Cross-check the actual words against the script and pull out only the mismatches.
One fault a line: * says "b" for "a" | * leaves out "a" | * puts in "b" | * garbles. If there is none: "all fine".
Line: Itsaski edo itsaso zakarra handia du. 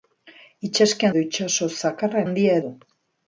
all fine